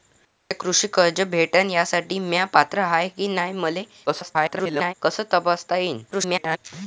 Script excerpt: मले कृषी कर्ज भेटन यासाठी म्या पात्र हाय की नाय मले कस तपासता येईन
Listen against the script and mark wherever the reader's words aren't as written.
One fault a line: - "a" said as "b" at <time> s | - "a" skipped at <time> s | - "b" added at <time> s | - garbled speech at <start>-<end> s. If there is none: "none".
- garbled speech at 4.1-4.9 s
- garbled speech at 6.1-6.6 s